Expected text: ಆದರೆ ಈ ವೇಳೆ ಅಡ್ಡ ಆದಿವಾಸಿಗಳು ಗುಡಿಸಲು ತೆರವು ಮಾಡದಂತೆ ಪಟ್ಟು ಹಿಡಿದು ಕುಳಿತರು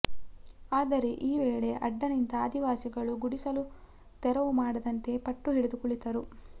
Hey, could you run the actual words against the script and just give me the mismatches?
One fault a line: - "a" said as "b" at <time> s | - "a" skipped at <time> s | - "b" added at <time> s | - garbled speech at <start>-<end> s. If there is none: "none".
- "ನಿಂತ" added at 2.1 s